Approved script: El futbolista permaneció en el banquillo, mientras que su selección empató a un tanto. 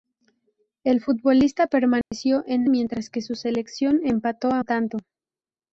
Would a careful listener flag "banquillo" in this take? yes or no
yes